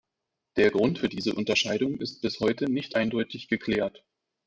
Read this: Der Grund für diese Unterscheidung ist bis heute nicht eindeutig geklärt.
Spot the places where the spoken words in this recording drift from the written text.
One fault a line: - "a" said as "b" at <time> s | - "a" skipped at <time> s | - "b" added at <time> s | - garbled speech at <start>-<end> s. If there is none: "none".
none